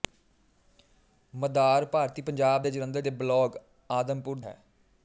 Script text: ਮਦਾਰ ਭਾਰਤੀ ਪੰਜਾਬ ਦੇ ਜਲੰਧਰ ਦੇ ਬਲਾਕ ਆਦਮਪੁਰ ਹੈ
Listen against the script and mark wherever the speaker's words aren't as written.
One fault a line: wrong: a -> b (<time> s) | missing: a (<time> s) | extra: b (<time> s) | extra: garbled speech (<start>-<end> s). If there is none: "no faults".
no faults